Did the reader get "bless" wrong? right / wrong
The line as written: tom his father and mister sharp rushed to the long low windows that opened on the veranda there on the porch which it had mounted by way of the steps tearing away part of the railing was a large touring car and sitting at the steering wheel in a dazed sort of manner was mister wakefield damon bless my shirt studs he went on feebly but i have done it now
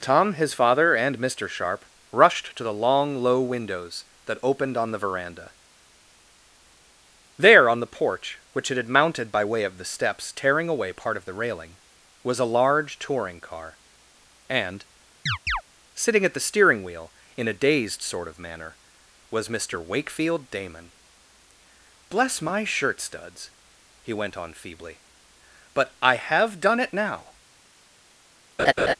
right